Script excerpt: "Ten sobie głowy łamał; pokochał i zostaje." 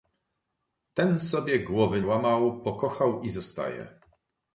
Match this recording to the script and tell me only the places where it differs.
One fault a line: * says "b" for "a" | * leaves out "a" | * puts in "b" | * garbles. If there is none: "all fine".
all fine